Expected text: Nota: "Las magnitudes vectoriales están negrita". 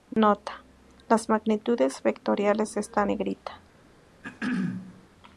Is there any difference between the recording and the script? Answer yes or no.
no